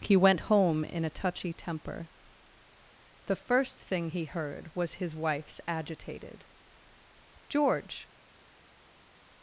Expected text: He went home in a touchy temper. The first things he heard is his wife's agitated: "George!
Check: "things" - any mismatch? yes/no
yes